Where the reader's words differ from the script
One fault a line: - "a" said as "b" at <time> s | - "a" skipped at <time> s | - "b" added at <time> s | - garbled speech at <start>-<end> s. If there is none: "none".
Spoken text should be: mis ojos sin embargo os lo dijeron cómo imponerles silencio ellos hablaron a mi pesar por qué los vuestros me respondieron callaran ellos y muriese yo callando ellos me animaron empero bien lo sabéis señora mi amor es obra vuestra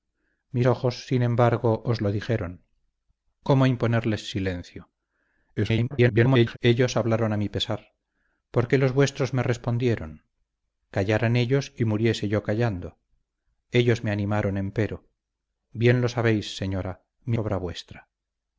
- garbled speech at 5.6-6.6 s
- "amor es" skipped at 17.4 s